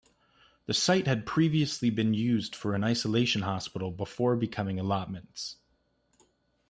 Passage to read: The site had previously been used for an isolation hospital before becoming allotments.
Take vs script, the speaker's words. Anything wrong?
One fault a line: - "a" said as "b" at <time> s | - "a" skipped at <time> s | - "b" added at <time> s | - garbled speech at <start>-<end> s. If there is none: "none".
none